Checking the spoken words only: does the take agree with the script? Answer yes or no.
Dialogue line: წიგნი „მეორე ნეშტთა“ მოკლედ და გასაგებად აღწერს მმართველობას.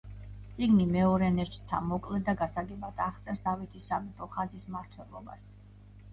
no